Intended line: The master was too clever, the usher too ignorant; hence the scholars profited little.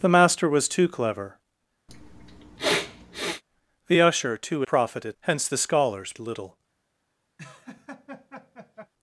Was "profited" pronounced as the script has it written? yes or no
no